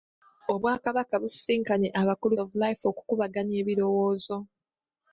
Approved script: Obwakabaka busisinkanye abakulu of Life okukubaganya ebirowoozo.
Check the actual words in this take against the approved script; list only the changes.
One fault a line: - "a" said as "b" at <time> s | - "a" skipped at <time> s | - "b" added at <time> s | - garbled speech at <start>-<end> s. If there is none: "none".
none